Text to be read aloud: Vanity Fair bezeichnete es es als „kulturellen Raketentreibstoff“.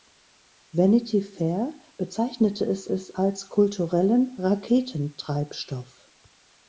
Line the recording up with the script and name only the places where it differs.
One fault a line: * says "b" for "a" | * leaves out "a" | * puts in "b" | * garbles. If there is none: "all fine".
all fine